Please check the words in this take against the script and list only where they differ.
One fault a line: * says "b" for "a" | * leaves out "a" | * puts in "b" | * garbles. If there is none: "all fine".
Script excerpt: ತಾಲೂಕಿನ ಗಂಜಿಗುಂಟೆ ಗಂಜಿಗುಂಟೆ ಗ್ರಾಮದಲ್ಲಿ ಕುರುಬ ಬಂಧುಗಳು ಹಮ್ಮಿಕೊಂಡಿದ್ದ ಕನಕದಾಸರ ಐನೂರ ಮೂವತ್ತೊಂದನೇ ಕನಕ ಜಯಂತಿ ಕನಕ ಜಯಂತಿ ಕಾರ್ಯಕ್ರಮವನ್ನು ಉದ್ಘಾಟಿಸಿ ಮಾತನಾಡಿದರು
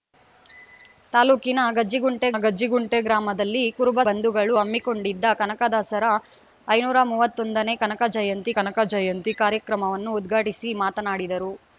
all fine